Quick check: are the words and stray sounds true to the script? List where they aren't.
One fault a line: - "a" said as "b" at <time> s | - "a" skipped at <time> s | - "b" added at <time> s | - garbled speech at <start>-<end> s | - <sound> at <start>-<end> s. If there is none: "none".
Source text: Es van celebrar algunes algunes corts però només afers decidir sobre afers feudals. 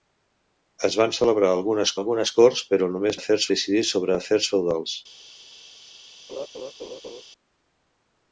- laugh at 6.3-7.2 s